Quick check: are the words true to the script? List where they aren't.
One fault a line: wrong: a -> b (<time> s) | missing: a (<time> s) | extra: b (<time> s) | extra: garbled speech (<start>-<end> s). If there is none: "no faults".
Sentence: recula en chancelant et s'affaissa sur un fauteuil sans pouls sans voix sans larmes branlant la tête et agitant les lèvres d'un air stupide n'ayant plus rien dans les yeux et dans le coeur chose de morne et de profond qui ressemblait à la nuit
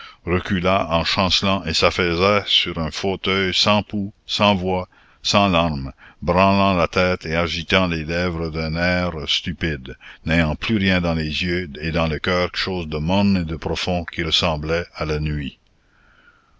no faults